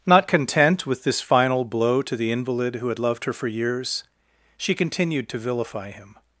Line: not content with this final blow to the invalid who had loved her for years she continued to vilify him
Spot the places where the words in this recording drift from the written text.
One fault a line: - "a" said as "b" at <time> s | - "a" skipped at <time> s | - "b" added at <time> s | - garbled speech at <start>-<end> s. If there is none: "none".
none